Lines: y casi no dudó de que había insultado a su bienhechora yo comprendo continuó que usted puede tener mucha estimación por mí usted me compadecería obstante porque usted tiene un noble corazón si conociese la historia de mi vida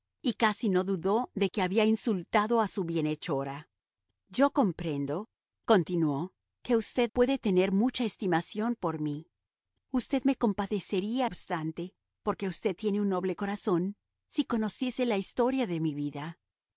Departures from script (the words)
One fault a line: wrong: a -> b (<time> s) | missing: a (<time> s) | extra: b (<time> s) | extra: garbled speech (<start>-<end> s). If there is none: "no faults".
no faults